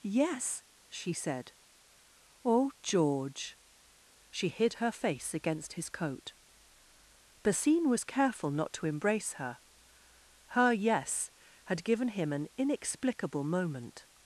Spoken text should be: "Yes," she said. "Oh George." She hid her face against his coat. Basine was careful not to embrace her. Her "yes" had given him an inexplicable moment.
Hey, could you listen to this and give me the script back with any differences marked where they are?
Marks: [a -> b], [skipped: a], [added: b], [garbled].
"Yes," she said. "Oh George." She hid her face against his coat. Basine was careful not to embrace her. Her "yes" had given him an inexplicable moment.